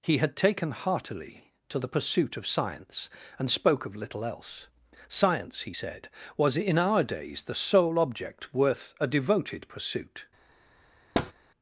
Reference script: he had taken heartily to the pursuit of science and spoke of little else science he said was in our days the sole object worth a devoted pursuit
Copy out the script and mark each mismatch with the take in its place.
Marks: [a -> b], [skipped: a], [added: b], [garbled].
he had taken heartily to the pursuit of science and spoke of little else science he said was in our days the sole object worth a devoted pursuit